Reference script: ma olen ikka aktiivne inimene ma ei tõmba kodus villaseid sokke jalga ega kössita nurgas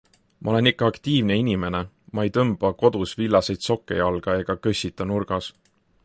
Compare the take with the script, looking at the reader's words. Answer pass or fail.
pass